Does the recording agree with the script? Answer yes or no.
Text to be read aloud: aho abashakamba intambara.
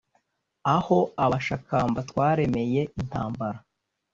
no